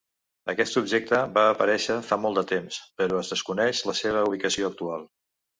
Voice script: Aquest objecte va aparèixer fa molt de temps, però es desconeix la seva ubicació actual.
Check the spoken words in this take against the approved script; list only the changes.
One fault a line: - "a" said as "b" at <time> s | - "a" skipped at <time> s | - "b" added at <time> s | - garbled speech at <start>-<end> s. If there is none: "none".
none